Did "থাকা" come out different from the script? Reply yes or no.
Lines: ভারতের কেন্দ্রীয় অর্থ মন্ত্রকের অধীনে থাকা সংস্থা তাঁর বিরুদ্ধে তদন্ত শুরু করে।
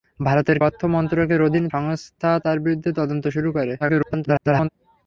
yes